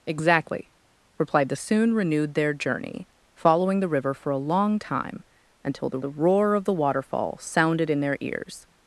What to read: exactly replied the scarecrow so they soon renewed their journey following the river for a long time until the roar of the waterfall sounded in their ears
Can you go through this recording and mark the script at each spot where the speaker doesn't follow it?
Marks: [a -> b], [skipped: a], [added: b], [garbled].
exactly replied the [skipped: scarecrow so they] soon renewed their journey following the river for a long time until the [added: the] roar of the waterfall sounded in their ears